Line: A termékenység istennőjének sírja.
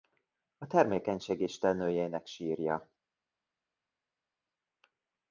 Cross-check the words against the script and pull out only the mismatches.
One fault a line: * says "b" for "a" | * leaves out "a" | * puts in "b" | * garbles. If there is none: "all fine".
all fine